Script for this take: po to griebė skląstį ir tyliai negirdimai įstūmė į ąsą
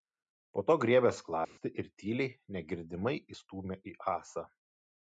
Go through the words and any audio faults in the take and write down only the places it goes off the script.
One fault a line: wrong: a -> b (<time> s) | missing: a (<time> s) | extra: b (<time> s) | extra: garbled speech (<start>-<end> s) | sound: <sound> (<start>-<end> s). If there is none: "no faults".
sound: dropout (1.4-1.6 s)